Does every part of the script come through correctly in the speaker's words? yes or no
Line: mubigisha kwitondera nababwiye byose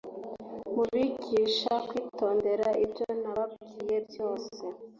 no